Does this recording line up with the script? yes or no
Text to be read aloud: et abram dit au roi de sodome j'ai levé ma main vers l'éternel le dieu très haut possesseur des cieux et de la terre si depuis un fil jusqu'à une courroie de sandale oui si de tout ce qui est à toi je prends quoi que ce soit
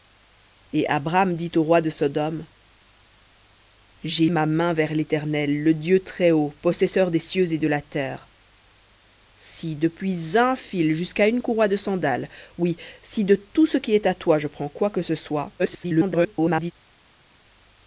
no